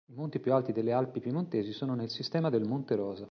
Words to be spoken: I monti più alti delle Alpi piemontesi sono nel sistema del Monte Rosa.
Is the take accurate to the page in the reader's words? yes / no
yes